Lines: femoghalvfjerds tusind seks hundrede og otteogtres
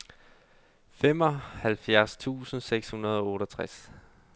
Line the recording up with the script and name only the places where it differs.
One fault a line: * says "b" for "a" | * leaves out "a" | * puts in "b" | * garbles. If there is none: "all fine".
all fine